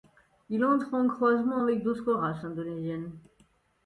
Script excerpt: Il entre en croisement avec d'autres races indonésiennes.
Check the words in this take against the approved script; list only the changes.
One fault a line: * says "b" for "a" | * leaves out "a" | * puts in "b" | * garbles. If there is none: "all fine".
all fine